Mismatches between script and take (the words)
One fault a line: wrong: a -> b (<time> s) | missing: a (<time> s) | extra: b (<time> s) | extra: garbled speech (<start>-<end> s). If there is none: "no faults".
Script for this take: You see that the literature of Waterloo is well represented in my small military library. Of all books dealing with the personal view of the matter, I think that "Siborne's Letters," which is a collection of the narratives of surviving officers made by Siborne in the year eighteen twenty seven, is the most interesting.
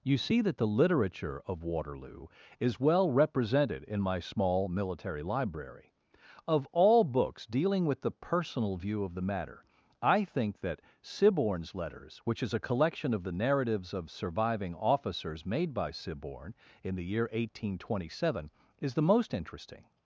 no faults